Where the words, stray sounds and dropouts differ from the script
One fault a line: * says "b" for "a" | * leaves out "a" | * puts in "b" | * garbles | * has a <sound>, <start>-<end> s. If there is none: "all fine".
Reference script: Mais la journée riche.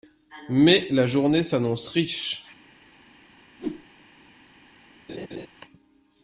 * puts in "s'annonce"
* has a whoosh, 3.6-3.9 s
* has a laugh, 5.1-5.5 s